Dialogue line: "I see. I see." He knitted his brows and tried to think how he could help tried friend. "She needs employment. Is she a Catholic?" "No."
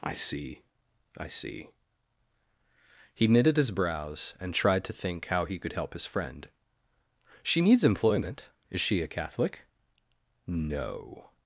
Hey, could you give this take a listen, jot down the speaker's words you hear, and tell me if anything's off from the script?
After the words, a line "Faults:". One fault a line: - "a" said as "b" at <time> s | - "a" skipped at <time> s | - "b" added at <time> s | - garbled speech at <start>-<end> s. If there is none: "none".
"I see. I see." He knitted his brows and tried to think how he could help his friend. "She needs employment. Is she a Catholic?" "No."
Faults:
- "tried" said as "his" at 5.9 s